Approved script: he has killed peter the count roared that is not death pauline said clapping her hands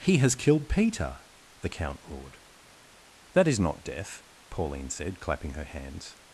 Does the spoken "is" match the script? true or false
true